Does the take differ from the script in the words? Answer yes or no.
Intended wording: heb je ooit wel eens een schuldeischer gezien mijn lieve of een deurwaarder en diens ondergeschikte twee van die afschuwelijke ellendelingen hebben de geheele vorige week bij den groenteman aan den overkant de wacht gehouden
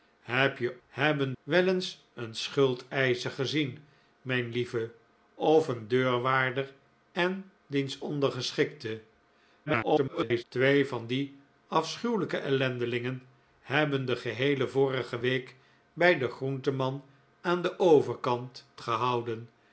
yes